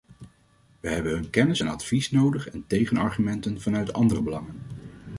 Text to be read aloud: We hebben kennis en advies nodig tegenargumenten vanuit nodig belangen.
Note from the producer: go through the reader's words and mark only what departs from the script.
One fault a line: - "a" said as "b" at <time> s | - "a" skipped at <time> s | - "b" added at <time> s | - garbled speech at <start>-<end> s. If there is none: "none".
- "hun" added at 1.1 s
- "en" added at 2.5 s
- "nodig" said as "andere" at 3.9 s